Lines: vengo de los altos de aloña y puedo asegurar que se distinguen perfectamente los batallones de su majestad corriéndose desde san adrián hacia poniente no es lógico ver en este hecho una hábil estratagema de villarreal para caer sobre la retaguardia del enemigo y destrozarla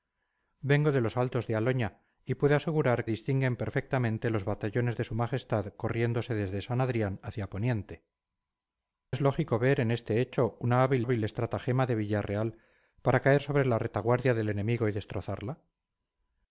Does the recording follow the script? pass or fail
fail